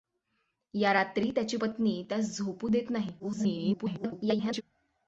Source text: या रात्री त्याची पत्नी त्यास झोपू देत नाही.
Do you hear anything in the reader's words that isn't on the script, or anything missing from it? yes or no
yes